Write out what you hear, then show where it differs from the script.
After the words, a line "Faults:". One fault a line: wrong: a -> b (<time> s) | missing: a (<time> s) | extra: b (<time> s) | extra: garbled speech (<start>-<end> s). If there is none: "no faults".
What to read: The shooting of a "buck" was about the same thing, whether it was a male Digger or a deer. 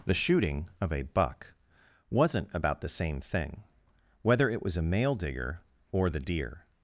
The shooting of a "buck" wasn't about the same thing, whether it was a male Digger or the deer.
Faults:
wrong: was -> wasn't (2.1 s)
wrong: a -> the (6.1 s)